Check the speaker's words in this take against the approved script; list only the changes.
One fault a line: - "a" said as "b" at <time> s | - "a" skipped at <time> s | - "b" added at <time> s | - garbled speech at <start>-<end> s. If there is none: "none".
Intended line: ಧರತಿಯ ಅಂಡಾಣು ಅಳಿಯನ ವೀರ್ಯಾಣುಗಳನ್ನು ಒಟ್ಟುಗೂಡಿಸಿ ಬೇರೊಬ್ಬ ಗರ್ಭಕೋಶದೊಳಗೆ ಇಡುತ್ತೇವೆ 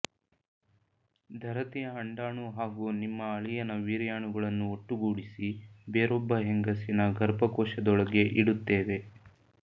- "ಹಾಗೂ ನಿಮ್ಮ" added at 2.5 s
- "ಹೆಂಗಸಿನ" added at 6.5 s